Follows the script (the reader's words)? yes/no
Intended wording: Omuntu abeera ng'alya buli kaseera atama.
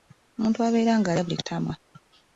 no